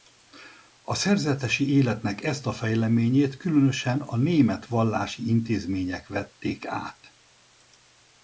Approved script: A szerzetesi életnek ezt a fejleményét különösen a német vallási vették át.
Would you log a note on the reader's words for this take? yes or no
yes